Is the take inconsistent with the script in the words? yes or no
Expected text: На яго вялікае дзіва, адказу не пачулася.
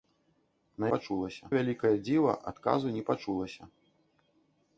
yes